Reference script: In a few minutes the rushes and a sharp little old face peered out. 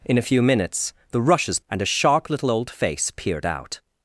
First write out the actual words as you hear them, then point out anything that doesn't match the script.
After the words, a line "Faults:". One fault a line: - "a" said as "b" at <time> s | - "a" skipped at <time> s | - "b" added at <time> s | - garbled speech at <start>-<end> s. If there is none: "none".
In a few minutes the rushes and a sharp little old face peered out.
Faults:
none